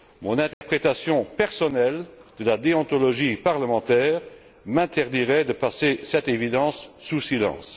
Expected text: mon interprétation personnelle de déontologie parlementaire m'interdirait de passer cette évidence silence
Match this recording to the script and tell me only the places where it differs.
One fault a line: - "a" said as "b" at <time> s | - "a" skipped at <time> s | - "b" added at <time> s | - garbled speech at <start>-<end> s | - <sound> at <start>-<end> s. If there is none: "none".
- dropout at 0.5-0.6 s
- "la" added at 2.5 s
- "sous" added at 7.0 s